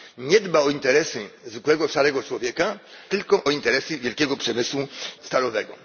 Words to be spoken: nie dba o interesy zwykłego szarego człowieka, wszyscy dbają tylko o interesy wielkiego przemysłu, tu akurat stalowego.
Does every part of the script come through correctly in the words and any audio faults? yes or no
no